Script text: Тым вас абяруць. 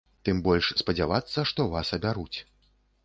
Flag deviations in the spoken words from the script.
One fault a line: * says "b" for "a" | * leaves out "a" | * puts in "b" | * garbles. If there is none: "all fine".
* puts in "больш спадзявацца што"